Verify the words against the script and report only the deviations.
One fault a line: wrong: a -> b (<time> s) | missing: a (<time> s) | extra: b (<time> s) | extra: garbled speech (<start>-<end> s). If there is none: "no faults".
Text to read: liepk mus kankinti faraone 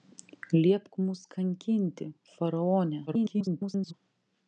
extra: garbled speech (3.1-3.9 s)